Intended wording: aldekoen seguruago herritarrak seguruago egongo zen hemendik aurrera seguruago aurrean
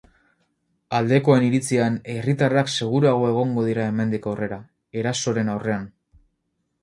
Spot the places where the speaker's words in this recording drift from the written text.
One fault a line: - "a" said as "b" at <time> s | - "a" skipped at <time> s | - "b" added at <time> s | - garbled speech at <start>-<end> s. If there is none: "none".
- "seguruago" said as "iritzian" at 1.5 s
- "zen" said as "dira" at 3.7 s
- "seguruago" said as "erasoren" at 5.0 s